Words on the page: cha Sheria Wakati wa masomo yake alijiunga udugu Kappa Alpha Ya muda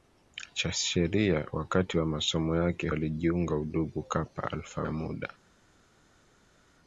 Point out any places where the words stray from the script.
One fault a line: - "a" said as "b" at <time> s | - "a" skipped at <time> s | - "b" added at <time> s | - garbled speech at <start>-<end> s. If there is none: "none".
none